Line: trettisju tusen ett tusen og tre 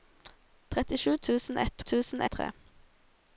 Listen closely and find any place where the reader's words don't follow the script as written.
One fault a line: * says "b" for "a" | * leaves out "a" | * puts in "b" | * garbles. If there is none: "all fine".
all fine